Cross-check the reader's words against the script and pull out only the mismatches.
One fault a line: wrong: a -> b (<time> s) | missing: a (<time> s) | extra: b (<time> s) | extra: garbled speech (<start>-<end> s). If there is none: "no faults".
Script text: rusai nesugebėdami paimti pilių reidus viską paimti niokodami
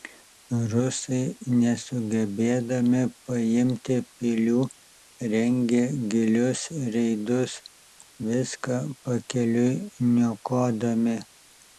extra: rengė gilius (5.3 s)
wrong: paimti -> pakeliui (9.1 s)